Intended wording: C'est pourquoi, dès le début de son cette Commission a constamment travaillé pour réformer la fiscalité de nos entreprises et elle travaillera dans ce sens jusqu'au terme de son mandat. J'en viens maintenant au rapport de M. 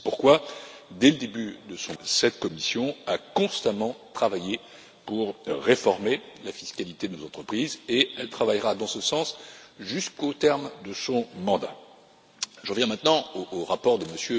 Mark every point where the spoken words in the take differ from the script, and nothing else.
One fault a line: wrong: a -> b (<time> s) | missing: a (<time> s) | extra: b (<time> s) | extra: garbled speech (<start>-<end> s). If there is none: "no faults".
no faults